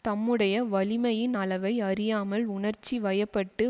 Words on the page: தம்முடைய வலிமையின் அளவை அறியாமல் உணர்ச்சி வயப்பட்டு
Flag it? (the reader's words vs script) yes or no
no